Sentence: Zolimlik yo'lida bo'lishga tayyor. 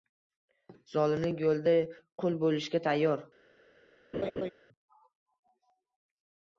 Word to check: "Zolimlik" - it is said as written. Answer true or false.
true